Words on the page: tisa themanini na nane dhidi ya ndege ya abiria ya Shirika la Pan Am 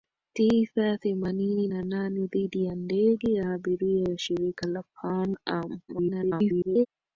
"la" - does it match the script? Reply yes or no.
yes